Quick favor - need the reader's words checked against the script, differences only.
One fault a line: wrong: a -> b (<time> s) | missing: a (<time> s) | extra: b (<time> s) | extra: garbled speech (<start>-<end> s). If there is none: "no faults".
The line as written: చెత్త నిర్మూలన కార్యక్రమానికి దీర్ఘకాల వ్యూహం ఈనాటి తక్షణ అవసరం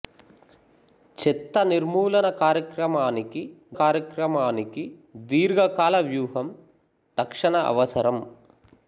extra: కార్యక్రమానికి (3.8 s)
missing: ఈనాటి (6.5 s)